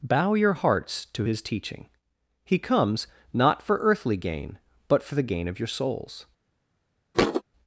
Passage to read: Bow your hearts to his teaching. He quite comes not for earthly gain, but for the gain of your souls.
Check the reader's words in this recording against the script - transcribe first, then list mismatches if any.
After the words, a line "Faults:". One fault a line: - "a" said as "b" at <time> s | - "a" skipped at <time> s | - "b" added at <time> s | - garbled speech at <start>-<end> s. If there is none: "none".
Bow your hearts to his teaching. He comes not for earthly gain, but for the gain of your souls.
Faults:
- "quite" skipped at 2.6 s